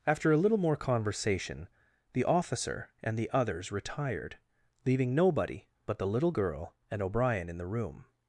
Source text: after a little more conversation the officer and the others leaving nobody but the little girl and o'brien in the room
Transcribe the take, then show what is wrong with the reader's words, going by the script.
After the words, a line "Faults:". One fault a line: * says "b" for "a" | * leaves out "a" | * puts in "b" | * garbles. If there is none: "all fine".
after a little more conversation the officer and the others retired leaving nobody but the little girl and o'brien in the room
Faults:
* puts in "retired"